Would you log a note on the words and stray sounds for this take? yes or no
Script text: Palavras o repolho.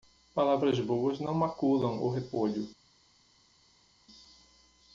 yes